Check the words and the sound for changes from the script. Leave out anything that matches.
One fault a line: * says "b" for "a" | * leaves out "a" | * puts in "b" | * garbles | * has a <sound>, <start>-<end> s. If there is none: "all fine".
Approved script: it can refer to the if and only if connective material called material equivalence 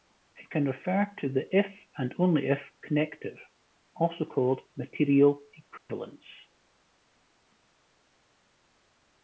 * says "also" for "material"
* has a dropout, 5.8-5.9 s